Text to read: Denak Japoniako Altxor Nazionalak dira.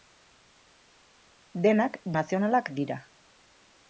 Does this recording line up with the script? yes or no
no